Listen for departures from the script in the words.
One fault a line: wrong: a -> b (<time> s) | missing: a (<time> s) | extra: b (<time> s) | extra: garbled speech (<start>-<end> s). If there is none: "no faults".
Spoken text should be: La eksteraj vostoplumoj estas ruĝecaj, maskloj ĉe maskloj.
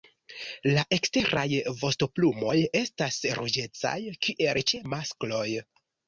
wrong: maskloj -> kiel (4.3 s)